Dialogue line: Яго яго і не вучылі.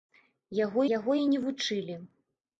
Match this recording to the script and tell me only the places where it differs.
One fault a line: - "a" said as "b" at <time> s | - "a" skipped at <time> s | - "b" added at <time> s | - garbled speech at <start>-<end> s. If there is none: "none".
none